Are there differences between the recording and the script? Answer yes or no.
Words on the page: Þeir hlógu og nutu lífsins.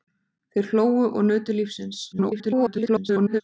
yes